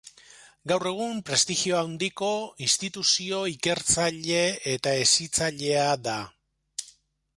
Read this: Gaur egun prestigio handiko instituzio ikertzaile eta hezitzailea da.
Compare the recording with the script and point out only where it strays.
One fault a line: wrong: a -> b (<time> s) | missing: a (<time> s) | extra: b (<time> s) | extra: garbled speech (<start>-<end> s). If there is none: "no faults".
no faults